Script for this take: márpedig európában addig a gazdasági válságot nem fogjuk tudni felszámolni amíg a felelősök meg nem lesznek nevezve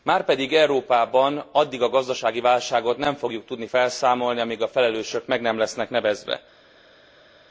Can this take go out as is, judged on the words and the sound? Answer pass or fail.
pass